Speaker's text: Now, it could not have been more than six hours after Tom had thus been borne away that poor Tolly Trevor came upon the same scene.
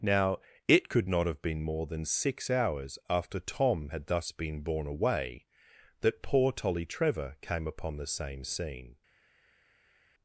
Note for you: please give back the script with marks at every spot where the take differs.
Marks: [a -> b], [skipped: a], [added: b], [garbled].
Now, it could not have been more than six hours after Tom had thus been borne away that poor Tolly Trevor came upon the same scene.